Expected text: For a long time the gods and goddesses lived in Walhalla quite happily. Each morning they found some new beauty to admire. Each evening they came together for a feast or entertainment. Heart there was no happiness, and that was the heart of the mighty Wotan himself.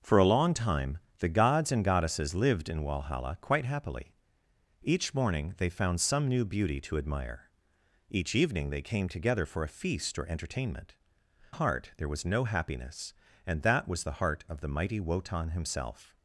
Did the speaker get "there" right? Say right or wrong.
right